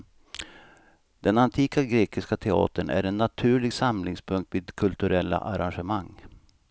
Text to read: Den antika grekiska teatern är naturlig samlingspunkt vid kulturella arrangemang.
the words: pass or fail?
fail